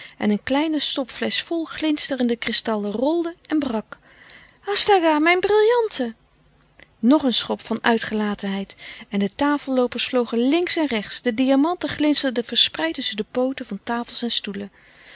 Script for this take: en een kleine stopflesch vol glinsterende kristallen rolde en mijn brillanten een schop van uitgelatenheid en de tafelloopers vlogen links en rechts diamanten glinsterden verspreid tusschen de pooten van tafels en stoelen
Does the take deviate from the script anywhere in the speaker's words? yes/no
yes